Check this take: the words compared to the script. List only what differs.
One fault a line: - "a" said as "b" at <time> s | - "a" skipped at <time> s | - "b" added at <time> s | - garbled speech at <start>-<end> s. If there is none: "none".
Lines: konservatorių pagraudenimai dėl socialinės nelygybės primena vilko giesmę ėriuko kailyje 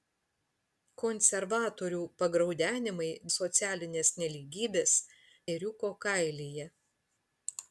- "dėl" skipped at 3.1 s
- "primena vilko giesmę" skipped at 4.9 s